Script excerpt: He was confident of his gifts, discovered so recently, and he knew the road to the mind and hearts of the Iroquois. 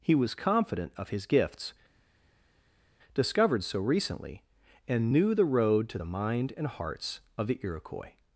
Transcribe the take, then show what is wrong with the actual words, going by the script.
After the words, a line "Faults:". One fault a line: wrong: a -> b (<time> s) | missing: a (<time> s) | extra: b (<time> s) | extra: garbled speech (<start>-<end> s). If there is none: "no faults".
He was confident of his gifts, discovered so recently, and knew the road to the mind and hearts of the Iroquois.
Faults:
missing: he (5.1 s)